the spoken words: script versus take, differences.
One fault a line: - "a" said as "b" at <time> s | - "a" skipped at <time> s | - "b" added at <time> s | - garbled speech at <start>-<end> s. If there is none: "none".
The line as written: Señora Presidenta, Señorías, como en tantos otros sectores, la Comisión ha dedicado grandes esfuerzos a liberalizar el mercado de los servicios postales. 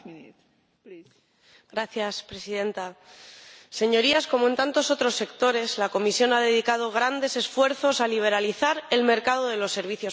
none